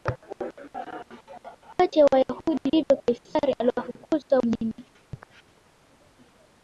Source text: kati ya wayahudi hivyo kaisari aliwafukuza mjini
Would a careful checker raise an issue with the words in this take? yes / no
no